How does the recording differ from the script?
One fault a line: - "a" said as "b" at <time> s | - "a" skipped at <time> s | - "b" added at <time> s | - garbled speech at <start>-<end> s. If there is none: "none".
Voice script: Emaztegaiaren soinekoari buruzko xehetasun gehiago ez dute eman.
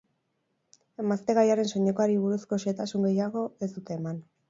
none